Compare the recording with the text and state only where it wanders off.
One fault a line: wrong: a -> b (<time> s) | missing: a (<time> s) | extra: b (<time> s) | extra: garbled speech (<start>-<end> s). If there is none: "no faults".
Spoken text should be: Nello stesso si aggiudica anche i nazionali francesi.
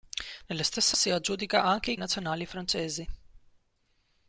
no faults